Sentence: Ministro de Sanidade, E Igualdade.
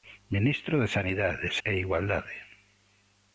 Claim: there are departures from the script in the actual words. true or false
false